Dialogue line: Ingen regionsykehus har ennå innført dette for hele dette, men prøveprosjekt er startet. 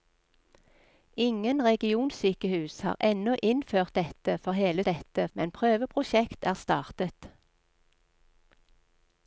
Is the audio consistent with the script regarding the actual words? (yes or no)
yes